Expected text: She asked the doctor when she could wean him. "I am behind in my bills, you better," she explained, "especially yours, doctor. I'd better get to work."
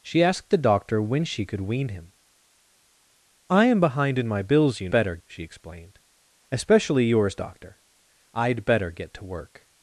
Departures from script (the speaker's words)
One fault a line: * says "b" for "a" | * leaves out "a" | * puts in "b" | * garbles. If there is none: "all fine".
all fine